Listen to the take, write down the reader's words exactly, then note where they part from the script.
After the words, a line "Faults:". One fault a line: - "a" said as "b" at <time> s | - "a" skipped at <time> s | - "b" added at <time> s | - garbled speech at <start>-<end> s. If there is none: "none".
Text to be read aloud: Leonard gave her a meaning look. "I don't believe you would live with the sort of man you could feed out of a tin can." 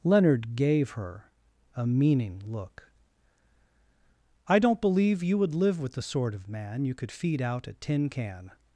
Leonard gave her a meaning look. "I don't believe you would live with the sort of man you could feed out a tin can."
Faults:
- "of" skipped at 7.7 s